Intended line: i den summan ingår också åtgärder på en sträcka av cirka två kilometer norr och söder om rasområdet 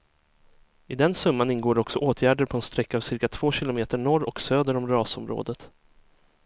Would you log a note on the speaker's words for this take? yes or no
no